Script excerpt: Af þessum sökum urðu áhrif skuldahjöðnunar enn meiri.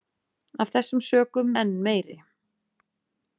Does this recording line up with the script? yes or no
no